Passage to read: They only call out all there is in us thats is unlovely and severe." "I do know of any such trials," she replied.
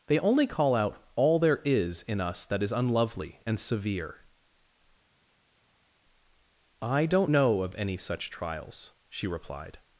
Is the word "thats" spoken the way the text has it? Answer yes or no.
no